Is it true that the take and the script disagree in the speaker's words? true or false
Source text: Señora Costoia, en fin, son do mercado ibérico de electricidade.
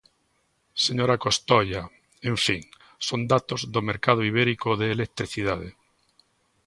true